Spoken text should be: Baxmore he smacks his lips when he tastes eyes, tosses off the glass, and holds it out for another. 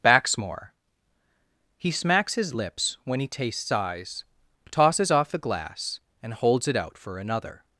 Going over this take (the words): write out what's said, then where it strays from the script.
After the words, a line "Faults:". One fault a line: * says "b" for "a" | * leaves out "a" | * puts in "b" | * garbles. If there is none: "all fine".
Baxmore he smacks his lips when he tastes eyes, tosses off the glass, and holds it out for another.
Faults:
all fine